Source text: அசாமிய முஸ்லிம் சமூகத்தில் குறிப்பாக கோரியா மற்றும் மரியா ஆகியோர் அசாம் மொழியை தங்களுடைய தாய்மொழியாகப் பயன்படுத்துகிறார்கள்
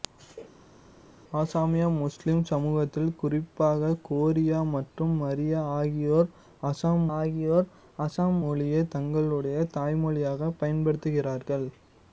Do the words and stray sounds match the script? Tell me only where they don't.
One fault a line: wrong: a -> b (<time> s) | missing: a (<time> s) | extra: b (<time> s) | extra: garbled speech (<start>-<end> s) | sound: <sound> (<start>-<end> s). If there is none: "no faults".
extra: ஆகியோர் அசாம் (7.1 s)